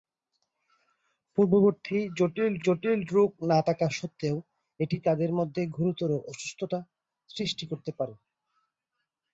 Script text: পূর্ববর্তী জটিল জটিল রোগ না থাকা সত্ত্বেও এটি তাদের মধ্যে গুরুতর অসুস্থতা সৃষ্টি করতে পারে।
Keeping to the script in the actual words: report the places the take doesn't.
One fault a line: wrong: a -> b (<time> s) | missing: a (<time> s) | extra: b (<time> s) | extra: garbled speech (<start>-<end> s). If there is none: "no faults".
no faults